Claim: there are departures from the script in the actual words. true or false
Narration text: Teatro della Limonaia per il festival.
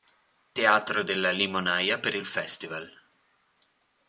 false